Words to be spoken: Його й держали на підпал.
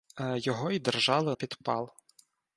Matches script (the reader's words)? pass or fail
fail